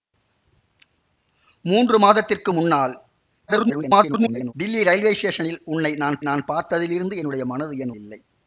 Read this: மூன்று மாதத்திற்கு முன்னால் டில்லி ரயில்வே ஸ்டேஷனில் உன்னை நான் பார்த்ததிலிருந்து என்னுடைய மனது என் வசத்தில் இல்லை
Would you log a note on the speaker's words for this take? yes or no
yes